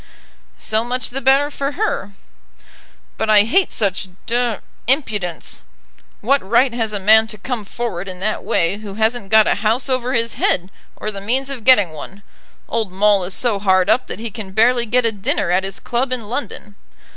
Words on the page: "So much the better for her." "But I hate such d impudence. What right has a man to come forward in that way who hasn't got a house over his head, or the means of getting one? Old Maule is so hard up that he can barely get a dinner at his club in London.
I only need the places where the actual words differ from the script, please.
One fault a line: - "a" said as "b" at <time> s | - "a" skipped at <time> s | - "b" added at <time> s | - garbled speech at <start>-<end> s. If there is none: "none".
none